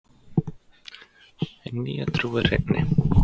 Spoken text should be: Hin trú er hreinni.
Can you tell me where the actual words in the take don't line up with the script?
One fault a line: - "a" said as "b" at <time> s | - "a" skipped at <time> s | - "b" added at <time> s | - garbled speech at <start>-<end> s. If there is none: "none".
- "nýja" added at 1.8 s